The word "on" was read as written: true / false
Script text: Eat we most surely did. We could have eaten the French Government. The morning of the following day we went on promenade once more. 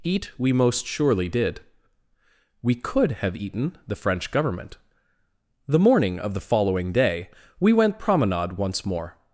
false